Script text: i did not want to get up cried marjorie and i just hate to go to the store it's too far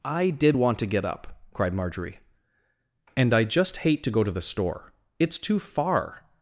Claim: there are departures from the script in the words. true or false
true